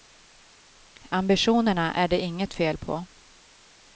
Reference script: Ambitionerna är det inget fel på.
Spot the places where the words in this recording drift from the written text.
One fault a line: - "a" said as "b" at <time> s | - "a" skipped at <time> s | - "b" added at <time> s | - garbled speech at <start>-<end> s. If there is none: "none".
none